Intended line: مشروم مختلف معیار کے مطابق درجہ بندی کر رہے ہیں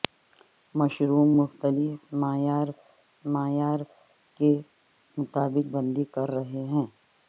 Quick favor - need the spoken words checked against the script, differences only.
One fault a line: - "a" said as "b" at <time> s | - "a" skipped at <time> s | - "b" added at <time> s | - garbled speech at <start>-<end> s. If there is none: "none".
- "معیار" added at 3.3 s
- "درجہ" skipped at 5.8 s